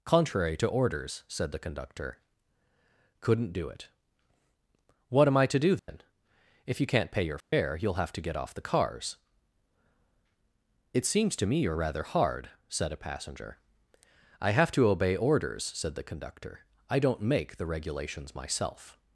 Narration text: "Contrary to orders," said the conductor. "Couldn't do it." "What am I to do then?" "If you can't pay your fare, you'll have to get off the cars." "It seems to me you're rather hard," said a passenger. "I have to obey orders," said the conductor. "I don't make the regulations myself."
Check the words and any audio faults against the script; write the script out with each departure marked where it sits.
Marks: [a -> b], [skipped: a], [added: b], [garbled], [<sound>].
"Contrary to orders," said the conductor. "Couldn't do it." "What am I to do then?" [dropout] "If you can't pay your fare, [dropout] you'll have to get off the cars." "It seems to me you're rather hard," said a passenger. "I have to obey orders," said the conductor. "I don't make the regulations myself."